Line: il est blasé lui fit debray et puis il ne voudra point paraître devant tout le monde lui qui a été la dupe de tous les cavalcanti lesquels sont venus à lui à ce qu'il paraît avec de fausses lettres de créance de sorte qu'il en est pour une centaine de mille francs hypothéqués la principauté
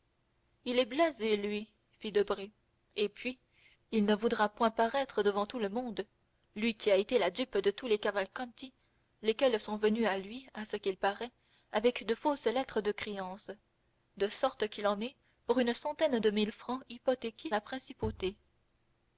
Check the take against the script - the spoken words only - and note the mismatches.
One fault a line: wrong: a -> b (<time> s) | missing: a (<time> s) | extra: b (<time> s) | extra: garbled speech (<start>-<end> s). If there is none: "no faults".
no faults